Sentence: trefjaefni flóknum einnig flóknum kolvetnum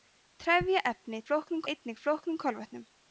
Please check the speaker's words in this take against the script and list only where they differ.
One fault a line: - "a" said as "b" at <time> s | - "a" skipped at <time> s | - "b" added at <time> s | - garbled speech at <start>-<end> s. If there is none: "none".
none